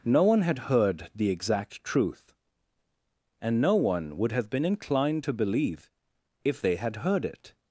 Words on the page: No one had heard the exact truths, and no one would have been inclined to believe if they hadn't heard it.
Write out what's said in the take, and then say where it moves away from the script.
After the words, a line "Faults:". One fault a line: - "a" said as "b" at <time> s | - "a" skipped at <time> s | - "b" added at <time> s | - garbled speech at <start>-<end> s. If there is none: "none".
No one had heard the exact truth, and no one would have been inclined to believe if they had heard it.
Faults:
- "truths" said as "truth" at 1.8 s
- "hadn't" said as "had" at 6.7 s